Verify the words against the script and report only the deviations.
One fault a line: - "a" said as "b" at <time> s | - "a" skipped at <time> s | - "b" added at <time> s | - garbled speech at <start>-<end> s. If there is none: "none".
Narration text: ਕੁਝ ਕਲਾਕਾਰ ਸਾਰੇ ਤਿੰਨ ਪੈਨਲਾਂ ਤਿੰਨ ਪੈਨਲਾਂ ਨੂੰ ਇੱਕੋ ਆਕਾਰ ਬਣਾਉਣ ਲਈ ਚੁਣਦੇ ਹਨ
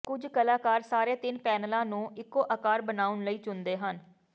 - "ਤਿੰਨ ਪੈਨਲਾਂ" skipped at 1.8 s